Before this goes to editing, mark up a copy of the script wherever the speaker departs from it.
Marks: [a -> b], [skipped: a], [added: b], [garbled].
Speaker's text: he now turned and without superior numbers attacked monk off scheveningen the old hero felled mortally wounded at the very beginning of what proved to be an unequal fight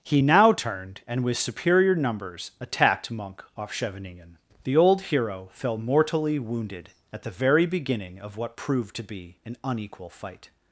he now turned and [without -> with] superior numbers attacked monk off scheveningen the old hero [felled -> fell] mortally wounded at the very beginning of what proved to be an unequal fight